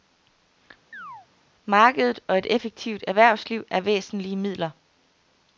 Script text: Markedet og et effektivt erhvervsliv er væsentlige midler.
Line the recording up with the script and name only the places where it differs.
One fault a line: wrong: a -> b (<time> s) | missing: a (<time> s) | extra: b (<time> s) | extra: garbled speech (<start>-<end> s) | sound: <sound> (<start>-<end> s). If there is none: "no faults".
sound: chirp (0.9-1.3 s)